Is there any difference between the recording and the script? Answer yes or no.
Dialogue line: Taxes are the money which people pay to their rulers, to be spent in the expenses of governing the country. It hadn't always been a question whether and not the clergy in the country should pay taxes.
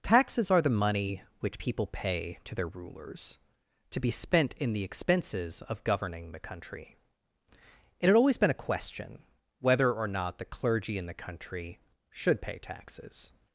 yes